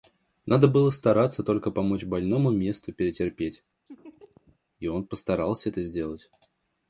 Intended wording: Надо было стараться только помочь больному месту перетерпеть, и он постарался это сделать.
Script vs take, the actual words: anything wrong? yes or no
no